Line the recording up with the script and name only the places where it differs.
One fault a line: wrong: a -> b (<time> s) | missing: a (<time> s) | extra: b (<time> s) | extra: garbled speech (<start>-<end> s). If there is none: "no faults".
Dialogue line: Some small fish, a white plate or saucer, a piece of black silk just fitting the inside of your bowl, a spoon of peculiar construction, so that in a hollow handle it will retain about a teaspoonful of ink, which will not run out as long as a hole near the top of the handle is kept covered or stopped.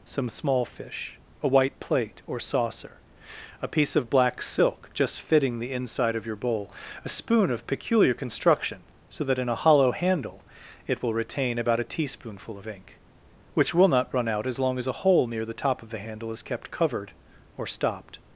no faults